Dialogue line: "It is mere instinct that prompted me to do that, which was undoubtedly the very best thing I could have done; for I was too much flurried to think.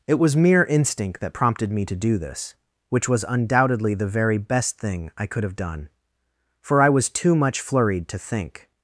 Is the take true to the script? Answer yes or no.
no